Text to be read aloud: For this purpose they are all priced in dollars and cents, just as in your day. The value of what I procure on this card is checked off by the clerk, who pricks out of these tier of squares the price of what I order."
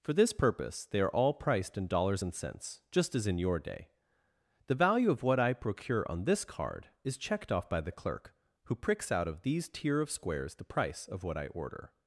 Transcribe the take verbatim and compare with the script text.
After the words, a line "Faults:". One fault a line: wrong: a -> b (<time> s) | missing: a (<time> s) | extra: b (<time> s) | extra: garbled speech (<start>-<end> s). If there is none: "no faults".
For this purpose they are all priced in dollars and cents, just as in your day. The value of what I procure on this card is checked off by the clerk, who pricks out of these tier of squares the price of what I order."
Faults:
no faults